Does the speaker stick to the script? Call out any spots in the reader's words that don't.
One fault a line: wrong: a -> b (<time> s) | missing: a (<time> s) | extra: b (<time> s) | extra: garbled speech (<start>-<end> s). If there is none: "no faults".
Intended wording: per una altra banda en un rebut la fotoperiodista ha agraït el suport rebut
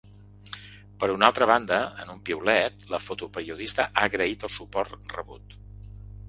wrong: rebut -> piulet (2.3 s)